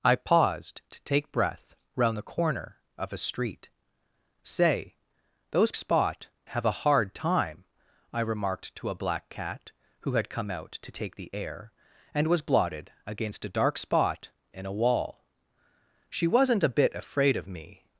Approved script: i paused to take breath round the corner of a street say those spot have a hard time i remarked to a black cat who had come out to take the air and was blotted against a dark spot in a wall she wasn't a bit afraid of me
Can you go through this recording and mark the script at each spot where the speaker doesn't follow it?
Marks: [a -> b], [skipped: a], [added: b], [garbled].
i paused to take breath round the corner of a street say those spot have a hard time i remarked to a black cat who had come out to take the air and was blotted against a dark spot in a wall she wasn't a bit afraid of me